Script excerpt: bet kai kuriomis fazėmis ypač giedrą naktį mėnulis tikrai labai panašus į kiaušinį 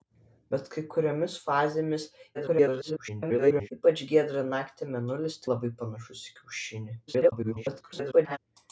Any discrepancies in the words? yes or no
yes